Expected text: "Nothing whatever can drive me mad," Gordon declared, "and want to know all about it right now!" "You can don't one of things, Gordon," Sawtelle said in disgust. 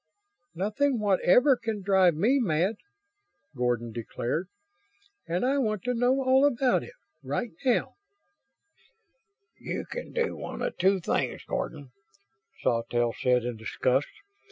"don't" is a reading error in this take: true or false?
true